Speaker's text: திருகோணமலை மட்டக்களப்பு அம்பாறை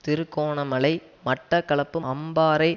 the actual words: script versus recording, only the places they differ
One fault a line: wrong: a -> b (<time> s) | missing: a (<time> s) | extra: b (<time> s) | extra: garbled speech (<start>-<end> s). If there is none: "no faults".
no faults